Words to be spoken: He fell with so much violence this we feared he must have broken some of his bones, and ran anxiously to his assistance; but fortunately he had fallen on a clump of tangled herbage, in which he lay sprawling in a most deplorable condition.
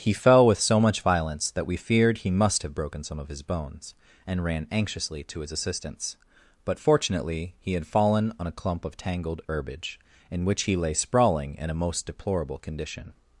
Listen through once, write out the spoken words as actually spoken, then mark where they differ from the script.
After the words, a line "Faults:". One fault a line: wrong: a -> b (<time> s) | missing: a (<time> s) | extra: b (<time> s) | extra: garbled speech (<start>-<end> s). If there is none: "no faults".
He fell with so much violence that we feared he must have broken some of his bones, and ran anxiously to his assistance; but fortunately he had fallen on a clump of tangled herbage, in which he lay sprawling in a most deplorable condition.
Faults:
wrong: this -> that (1.5 s)